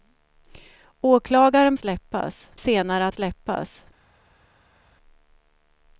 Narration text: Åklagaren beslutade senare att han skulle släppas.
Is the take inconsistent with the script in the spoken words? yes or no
yes